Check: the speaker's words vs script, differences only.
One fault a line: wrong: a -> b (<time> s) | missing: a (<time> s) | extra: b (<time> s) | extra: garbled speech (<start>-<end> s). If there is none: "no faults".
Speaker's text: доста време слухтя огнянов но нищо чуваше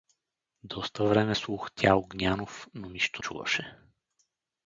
no faults